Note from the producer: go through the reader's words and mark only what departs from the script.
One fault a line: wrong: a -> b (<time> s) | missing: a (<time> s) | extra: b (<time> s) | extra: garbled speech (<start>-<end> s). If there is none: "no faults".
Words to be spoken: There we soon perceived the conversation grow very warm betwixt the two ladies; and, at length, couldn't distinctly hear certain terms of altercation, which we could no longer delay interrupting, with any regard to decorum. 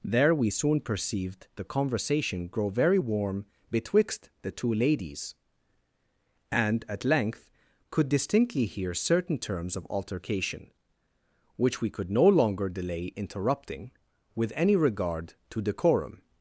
wrong: couldn't -> could (7.9 s)